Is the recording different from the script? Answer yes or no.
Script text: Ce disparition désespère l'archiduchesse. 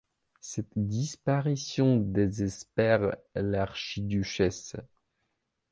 yes